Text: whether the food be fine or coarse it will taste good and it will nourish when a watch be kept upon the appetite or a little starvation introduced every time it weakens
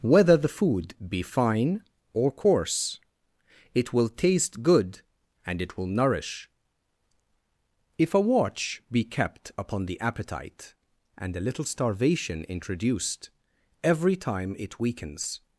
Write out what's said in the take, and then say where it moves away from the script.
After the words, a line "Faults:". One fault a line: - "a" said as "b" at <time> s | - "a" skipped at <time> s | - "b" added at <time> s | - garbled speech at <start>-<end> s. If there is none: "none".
whether the food be fine or coarse it will taste good and it will nourish if a watch be kept upon the appetite and a little starvation introduced every time it weakens
Faults:
- "when" said as "if" at 8.0 s
- "or" said as "and" at 11.2 s